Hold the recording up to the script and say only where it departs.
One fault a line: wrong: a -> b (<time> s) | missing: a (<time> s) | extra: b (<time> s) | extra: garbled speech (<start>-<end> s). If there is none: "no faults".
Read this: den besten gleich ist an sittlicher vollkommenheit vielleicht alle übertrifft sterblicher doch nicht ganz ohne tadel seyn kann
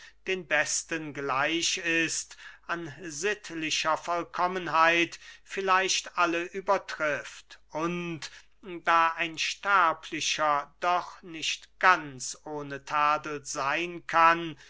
extra: und da ein (7.7 s)